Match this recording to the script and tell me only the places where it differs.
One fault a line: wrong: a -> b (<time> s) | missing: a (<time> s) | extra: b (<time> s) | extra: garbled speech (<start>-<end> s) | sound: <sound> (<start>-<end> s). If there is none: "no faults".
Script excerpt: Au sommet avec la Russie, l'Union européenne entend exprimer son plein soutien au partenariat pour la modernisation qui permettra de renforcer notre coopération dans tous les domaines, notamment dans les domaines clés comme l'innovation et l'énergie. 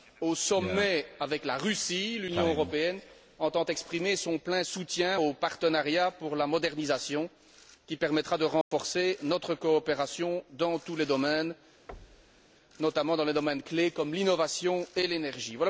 sound: dropout (8.6-8.7 s)
sound: thud (11.9-12.5 s)